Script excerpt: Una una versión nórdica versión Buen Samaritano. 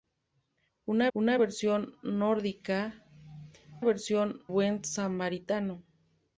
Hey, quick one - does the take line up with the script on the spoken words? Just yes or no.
yes